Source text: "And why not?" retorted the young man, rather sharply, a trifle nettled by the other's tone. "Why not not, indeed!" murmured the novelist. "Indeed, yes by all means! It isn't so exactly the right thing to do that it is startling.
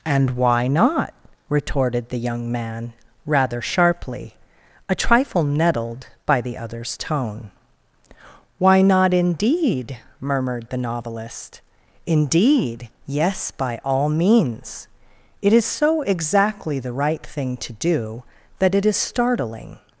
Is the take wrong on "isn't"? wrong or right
wrong